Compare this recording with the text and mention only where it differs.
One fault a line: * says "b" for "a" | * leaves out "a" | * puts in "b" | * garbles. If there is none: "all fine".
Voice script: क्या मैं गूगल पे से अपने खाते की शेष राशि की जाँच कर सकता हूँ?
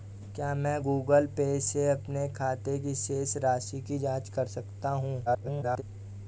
* garbles